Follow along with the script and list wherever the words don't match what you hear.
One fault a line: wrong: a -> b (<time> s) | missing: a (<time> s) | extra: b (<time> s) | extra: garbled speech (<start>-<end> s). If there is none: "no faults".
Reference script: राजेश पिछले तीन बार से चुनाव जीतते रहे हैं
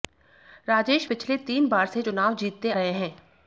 no faults